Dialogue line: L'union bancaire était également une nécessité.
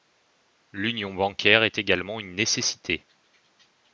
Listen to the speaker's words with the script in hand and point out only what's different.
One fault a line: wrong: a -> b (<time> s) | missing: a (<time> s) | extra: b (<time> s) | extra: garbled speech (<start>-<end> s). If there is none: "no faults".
wrong: était -> est (1.6 s)